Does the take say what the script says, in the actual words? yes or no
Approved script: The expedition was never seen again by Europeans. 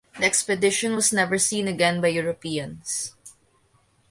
yes